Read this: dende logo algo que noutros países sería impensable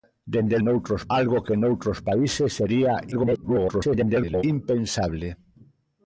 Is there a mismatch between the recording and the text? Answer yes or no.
yes